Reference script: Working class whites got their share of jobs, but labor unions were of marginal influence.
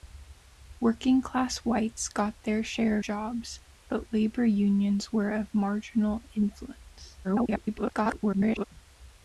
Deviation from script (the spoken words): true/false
true